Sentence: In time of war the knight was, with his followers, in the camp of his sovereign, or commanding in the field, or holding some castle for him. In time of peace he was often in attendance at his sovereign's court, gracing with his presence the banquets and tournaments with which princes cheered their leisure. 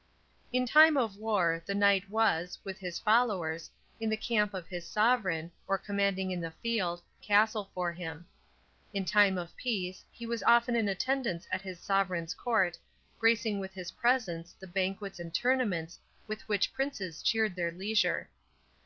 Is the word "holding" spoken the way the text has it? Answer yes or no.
no